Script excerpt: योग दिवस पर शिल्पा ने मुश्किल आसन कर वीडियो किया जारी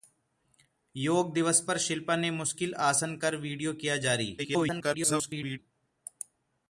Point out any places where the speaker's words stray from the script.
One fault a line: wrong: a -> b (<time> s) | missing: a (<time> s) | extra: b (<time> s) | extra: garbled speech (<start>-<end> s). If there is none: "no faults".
extra: garbled speech (4.4-5.6 s)